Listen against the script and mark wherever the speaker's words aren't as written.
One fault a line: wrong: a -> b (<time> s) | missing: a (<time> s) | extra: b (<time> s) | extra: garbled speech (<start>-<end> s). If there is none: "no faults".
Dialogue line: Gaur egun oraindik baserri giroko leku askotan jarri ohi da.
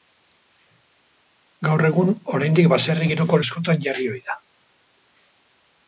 missing: leku (3.4 s)